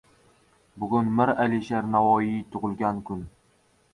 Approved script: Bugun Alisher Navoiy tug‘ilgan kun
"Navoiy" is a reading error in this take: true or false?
false